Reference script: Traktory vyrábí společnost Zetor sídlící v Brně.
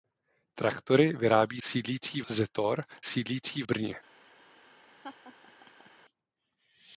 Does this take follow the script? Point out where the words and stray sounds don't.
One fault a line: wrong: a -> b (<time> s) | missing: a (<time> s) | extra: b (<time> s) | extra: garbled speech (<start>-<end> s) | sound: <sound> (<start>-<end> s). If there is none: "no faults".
wrong: společnost -> sídlící (1.6 s)
missing: v (3.6 s)
sound: laugh (5.0-5.9 s)